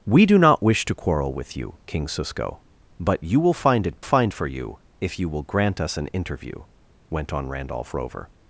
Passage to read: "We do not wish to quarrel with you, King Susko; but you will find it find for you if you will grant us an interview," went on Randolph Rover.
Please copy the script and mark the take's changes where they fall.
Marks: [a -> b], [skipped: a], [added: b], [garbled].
"We do not wish to quarrel with you, King Susko; but you will find it find for you if you will grant us an interview," went on Randolph Rover.